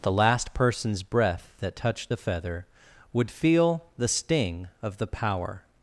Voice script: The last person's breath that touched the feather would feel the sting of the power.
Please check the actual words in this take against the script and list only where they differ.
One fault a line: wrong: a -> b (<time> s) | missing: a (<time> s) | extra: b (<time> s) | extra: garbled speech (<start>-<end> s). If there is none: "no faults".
no faults